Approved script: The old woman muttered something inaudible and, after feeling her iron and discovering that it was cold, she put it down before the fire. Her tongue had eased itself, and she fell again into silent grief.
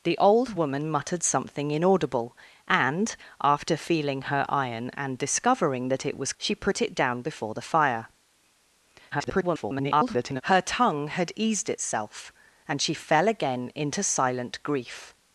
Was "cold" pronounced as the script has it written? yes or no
no